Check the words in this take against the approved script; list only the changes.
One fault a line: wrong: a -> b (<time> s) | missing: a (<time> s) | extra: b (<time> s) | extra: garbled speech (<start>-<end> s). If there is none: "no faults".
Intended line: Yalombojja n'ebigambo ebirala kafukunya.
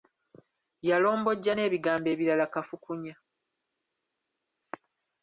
no faults